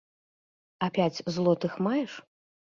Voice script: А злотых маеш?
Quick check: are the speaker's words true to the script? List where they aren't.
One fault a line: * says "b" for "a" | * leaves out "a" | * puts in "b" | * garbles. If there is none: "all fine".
* puts in "пяць"